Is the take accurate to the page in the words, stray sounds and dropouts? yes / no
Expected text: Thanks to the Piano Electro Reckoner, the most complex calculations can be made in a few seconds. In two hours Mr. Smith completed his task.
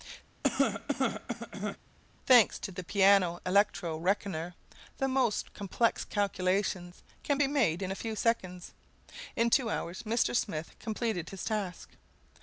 no